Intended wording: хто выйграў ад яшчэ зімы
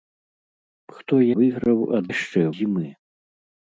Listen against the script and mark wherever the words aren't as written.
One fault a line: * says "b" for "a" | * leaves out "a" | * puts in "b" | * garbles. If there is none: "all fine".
all fine